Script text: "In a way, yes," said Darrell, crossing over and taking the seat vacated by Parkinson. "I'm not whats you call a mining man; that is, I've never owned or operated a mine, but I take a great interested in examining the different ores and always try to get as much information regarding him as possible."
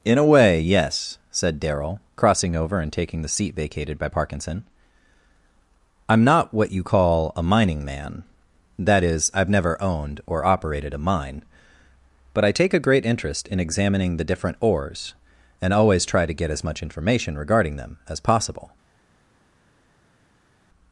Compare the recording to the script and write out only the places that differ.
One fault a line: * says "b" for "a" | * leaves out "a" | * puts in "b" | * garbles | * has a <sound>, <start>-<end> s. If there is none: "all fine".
* says "what" for "whats"
* says "interest" for "interested"
* says "them" for "him"